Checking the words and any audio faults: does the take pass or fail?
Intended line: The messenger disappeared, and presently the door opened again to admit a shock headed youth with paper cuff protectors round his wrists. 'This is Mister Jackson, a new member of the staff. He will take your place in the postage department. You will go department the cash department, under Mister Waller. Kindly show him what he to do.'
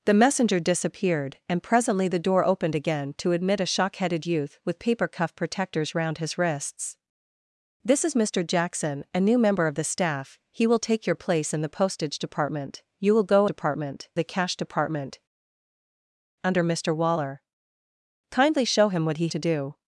pass